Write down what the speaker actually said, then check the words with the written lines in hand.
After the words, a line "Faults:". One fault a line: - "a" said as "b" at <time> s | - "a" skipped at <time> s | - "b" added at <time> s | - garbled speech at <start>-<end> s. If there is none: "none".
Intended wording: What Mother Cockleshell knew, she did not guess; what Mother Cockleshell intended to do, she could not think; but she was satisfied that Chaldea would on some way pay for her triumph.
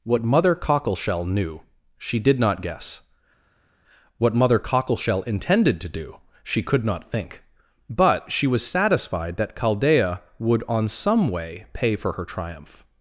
What Mother Cockleshell knew, she did not guess; what Mother Cockleshell intended to do, she could not think; but she was satisfied that Chaldea would on some way pay for her triumph.
Faults:
none